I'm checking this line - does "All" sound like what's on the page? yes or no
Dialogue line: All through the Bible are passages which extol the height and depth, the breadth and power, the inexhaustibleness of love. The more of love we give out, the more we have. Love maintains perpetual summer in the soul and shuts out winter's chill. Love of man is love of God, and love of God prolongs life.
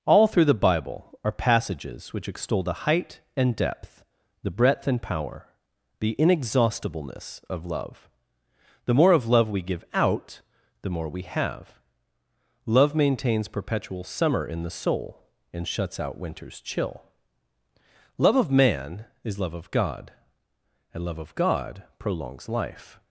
yes